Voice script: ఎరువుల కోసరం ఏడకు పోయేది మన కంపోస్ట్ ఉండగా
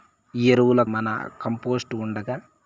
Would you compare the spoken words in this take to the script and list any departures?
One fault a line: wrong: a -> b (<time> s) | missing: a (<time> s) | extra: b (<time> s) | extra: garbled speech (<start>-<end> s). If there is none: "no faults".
missing: కోసరం ఏడకు పోయేది (0.8 s)